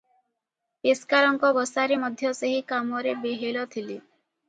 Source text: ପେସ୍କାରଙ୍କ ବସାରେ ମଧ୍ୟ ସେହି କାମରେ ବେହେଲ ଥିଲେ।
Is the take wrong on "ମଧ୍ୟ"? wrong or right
right